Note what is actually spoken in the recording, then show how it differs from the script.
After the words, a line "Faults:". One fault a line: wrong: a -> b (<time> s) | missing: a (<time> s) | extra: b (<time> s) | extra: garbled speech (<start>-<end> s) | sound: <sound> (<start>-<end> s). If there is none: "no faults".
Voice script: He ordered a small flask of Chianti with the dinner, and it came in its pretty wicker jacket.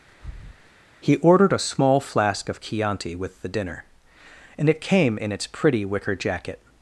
He ordered a small flask of Chianti with the dinner, and it came in its pretty wicker jacket.
Faults:
sound: breath (0.1-0.7 s)